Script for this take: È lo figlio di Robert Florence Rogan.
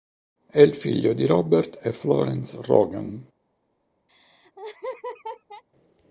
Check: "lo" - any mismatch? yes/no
yes